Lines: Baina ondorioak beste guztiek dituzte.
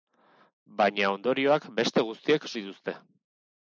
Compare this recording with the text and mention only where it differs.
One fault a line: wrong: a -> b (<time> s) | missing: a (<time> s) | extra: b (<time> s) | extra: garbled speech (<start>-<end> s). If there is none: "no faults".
no faults